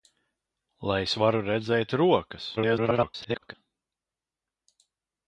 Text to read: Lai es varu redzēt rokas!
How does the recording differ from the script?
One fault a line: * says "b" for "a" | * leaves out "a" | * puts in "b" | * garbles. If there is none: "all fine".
* garbles